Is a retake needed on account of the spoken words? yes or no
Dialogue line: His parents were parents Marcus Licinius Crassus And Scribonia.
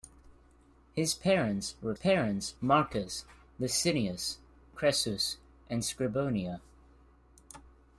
no